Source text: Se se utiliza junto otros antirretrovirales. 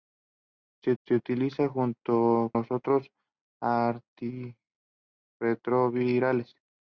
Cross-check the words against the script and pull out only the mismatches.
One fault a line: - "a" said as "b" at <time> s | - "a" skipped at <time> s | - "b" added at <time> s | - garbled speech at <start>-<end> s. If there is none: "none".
none